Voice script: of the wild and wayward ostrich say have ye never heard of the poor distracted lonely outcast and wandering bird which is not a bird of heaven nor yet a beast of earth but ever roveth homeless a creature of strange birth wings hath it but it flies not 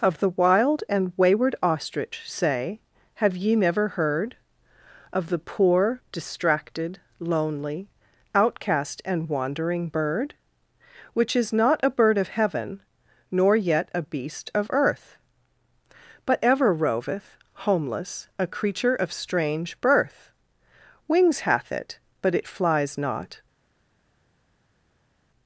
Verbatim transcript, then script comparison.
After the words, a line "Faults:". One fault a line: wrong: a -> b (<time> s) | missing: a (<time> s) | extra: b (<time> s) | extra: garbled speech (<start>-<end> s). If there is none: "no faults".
of the wild and wayward ostrich say have ye never heard of the poor distracted lonely outcast and wandering bird which is not a bird of heaven nor yet a beast of earth but ever roveth homeless a creature of strange birth wings hath it but it flies not
Faults:
no faults